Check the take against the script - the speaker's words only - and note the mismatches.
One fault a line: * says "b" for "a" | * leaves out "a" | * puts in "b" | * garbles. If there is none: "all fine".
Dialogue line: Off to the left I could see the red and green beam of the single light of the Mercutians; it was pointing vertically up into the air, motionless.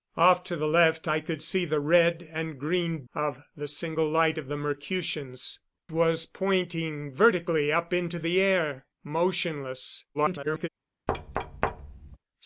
* leaves out "beam"
* leaves out "it"
* garbles